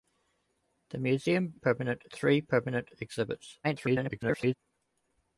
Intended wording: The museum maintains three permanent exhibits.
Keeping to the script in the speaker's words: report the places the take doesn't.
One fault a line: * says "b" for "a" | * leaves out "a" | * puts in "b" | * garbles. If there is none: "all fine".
* says "permanent" for "maintains"
* garbles